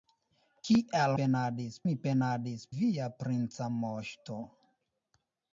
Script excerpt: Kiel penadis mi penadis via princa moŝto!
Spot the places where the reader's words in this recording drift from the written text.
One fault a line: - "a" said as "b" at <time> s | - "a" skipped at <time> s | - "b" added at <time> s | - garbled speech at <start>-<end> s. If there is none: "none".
none